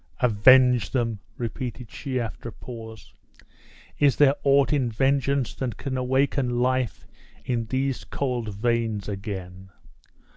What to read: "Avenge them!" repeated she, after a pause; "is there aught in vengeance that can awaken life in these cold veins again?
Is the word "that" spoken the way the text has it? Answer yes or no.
yes